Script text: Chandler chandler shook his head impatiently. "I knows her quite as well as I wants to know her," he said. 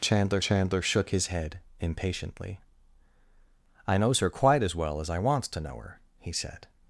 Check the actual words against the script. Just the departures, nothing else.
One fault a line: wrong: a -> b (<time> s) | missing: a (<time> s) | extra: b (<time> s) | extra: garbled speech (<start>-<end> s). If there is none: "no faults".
no faults